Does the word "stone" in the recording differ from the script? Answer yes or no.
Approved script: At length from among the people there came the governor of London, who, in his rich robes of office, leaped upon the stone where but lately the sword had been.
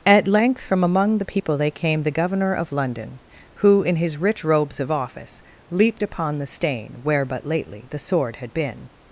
yes